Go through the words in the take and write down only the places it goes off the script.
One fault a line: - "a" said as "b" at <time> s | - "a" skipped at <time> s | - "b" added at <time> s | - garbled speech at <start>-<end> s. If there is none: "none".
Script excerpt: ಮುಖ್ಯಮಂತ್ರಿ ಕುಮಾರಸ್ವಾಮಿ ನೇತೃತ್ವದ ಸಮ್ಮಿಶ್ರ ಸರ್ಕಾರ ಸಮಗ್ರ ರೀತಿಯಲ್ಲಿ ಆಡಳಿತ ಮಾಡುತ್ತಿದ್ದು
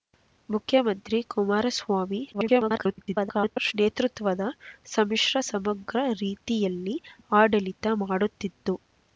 - garbled speech at 2.3-3.7 s
- "ಸರ್ಕಾರ" skipped at 5.4 s